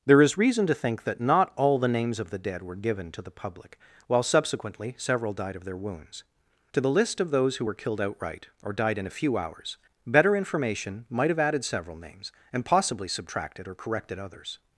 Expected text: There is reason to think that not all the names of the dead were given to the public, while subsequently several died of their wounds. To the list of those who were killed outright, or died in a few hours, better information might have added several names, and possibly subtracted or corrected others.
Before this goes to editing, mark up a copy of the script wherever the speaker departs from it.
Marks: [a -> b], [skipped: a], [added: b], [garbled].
There is reason to think that not all the names of the dead were given to the public, while subsequently several died of their wounds. To the list of those who were killed outright, or died in a few hours, better information might have added several names, and possibly subtracted or corrected others.